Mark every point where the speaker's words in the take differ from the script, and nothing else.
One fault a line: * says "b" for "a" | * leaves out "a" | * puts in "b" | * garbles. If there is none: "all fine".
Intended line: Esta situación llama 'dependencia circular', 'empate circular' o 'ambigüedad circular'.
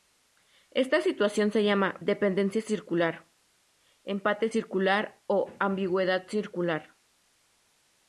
* puts in "se"